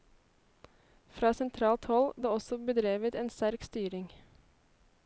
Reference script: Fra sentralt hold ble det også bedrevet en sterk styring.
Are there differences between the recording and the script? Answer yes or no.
yes